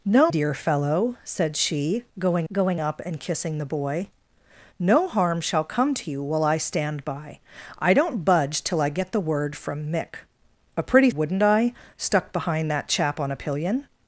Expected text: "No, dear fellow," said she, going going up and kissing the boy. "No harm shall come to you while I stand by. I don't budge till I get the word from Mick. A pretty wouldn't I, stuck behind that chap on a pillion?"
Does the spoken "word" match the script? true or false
true